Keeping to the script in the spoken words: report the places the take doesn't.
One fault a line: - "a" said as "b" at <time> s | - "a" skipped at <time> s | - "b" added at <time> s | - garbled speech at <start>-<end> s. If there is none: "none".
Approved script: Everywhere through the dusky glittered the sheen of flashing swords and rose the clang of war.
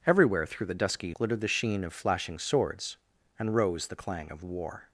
none